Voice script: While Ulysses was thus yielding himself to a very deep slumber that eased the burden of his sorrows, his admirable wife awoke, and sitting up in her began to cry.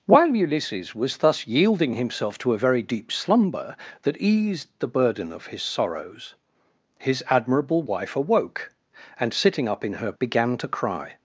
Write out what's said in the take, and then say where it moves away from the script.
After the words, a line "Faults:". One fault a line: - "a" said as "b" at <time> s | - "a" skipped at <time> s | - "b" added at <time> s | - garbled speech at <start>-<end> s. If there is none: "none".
While Ulysses was thus yielding himself to a very deep slumber that eased the burden of his sorrows, his admirable wife awoke, and sitting up in her began to cry.
Faults:
none